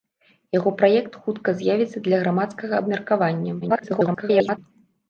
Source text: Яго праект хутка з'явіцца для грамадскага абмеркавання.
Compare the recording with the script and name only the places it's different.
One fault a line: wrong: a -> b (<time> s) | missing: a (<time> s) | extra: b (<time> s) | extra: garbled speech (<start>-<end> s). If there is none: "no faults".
extra: garbled speech (3.6-4.6 s)